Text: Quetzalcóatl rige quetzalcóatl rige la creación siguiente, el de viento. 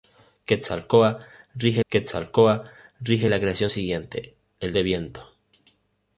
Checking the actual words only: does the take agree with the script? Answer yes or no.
yes